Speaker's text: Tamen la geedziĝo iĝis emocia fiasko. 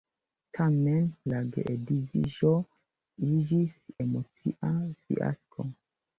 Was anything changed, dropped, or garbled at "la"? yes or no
no